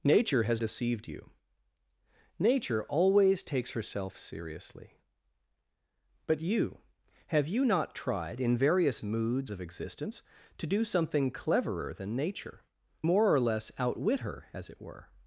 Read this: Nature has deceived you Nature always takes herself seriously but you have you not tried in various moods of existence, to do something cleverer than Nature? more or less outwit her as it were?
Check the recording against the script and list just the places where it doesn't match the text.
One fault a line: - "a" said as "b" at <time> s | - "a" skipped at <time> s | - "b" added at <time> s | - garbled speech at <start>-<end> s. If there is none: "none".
none